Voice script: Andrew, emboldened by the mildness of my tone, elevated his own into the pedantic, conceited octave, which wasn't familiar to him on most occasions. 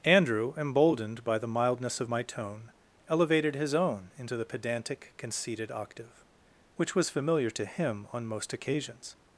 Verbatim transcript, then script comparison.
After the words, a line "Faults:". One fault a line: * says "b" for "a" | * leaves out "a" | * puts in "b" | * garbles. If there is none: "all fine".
Andrew, emboldened by the mildness of my tone, elevated his own into the pedantic, conceited octave, which was familiar to him on most occasions.
Faults:
* says "was" for "wasn't"